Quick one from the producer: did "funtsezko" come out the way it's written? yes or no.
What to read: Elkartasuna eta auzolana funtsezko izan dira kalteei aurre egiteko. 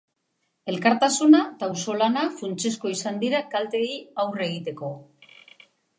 yes